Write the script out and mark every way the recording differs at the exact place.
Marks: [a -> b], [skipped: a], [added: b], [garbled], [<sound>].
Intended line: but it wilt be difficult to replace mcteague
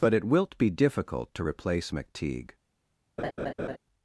but it wilt be difficult to replace mcteague [laugh]